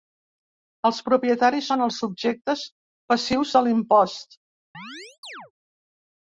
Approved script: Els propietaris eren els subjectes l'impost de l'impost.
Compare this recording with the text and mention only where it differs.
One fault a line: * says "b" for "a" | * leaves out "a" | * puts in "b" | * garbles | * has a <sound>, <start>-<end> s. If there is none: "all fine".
* says "són" for "eren"
* says "passius" for "l'impost"
* has a chirp, 4.7-5.5 s